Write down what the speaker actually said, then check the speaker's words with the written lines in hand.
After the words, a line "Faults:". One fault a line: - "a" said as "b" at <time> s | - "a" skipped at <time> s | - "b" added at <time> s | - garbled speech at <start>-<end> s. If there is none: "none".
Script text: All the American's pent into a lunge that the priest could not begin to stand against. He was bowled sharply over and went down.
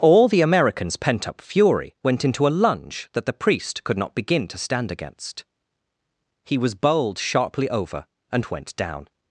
All the American's pent up fury went into a lunge that the priest could not begin to stand against. He was bowled sharply over and went down.
Faults:
- "up fury went" added at 1.3 s